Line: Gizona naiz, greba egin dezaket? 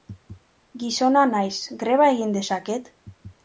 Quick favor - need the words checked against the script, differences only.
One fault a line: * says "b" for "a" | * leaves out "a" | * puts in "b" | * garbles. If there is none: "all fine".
all fine